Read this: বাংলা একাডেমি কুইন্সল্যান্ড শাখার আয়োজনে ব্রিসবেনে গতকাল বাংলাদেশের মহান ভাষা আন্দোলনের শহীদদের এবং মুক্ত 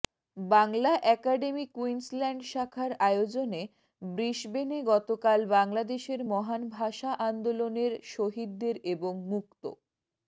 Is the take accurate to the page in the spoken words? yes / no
yes